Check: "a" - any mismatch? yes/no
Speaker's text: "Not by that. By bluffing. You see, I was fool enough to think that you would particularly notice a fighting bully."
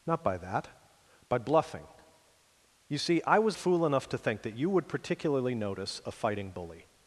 no